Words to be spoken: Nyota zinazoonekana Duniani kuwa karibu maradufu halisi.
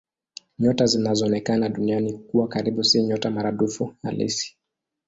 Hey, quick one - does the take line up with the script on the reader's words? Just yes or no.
no